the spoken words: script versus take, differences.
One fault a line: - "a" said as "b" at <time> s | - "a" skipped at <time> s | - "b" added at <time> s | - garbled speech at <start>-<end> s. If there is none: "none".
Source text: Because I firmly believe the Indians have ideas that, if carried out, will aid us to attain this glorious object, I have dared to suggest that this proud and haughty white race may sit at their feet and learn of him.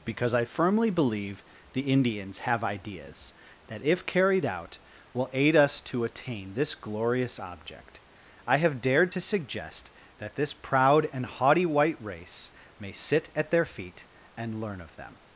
- "him" said as "them" at 14.9 s